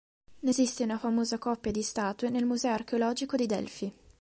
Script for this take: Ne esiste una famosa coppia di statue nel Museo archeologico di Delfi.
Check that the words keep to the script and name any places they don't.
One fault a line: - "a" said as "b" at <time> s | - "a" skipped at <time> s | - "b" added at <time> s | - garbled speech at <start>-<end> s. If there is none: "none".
none